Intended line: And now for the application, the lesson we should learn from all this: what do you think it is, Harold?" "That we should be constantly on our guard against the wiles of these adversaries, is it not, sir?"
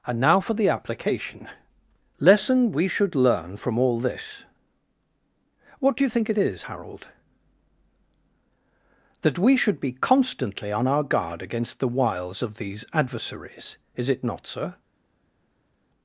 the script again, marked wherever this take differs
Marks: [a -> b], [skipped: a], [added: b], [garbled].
And now for the application, [skipped: the] lesson we should learn from all this: what do you think it is, Harold?" "That we should be constantly on our guard against the wiles of these adversaries, is it not, sir?"